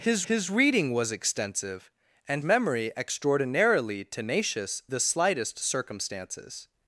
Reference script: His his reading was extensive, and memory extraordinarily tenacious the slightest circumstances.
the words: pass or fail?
pass